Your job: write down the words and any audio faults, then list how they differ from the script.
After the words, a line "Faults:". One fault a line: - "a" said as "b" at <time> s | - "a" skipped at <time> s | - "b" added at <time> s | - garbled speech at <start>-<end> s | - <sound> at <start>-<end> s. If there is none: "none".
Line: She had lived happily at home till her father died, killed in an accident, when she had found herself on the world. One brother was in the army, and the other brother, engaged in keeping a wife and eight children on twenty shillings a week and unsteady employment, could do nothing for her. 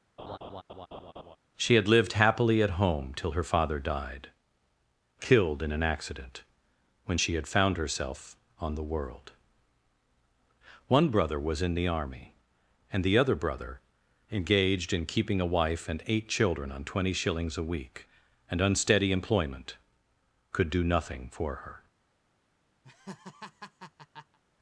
She had lived happily at home till her father died, killed in an accident, when she had found herself on the world. One brother was in the army, and the other brother, engaged in keeping a wife and eight children on twenty shillings a week and unsteady employment, could do nothing for her.
Faults:
- laugh at 0.2-1.4 s
- laugh at 22.8-24.4 s